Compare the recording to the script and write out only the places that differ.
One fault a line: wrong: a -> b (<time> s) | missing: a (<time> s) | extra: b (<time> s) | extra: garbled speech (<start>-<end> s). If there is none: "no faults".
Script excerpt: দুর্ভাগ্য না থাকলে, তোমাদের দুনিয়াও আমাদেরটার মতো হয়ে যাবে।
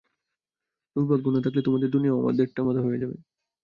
no faults